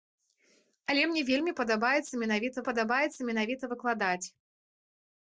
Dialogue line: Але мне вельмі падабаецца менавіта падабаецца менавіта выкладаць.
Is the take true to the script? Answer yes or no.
yes